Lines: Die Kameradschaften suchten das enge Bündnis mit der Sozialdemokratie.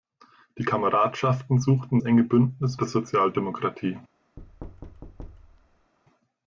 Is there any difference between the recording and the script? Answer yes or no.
yes